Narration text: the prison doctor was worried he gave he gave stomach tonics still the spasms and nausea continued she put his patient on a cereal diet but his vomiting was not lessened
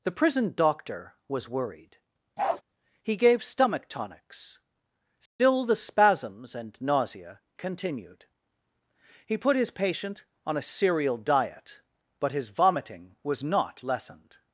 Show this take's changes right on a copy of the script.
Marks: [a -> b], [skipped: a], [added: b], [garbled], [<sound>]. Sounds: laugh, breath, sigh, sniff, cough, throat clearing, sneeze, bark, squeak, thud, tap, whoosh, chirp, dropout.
the prison doctor was worried [bark] he gave [skipped: he gave] stomach tonics still [dropout] the spasms and nausea continued [she -> he] put his patient on a cereal diet but his vomiting was not lessened